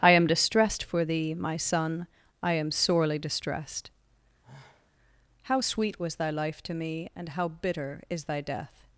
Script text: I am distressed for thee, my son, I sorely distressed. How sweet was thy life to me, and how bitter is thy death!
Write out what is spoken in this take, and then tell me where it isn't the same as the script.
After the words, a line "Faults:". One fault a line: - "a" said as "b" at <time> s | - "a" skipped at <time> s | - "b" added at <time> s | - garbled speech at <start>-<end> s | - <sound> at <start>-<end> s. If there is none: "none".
I am distressed for thee, my son, I am sorely distressed. How sweet was thy life to me, and how bitter is thy death!
Faults:
- "am" added at 2.5 s
- sigh at 4.4-4.9 s